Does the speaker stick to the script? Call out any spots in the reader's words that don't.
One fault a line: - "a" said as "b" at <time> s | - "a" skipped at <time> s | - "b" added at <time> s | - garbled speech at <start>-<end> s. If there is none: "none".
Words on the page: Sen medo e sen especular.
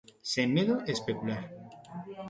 - "sen" skipped at 0.9 s